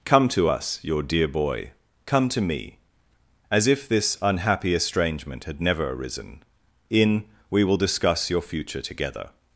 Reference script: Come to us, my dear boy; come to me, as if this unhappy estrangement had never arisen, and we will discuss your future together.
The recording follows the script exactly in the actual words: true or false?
false